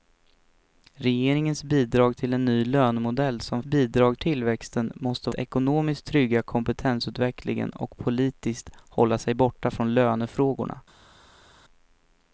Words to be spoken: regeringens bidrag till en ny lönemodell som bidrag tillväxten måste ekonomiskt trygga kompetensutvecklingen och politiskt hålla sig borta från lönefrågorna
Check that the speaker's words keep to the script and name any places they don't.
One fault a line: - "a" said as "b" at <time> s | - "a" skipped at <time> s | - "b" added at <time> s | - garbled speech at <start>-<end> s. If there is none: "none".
none